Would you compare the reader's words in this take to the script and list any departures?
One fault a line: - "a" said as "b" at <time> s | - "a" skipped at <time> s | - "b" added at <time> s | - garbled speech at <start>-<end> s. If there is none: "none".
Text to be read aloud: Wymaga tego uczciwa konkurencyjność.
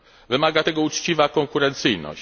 none